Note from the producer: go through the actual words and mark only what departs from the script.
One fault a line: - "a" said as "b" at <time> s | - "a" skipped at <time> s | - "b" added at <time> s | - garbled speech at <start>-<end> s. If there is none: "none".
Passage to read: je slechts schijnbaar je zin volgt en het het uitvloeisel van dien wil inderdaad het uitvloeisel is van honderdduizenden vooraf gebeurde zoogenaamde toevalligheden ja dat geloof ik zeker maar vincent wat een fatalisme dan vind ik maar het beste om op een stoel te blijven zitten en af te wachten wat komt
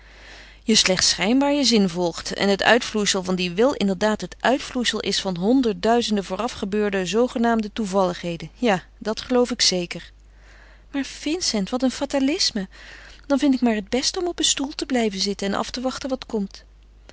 - "het" skipped at 2.6 s